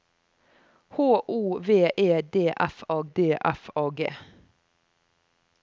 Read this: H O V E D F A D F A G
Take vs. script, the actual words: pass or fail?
pass